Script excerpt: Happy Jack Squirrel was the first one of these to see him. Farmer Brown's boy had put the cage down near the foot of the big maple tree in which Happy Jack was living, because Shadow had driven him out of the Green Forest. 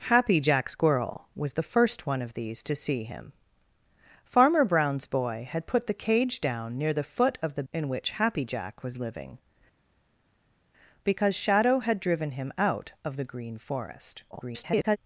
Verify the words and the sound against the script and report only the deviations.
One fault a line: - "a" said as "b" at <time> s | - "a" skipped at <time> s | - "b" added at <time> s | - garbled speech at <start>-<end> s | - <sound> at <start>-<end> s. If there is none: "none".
- "big maple tree" skipped at 7.6 s
- garbled speech at 14.3-15.0 s